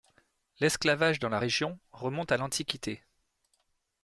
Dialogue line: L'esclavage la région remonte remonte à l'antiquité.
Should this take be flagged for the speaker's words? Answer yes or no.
yes